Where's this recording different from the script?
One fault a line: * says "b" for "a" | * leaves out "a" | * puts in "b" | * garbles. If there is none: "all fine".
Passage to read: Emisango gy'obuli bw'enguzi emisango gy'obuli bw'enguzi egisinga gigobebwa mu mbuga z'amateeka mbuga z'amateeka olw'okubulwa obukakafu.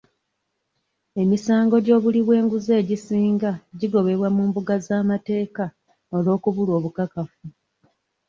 * leaves out "emisango gy'obuli bw'enguzi"
* leaves out "mbuga z'amateeka"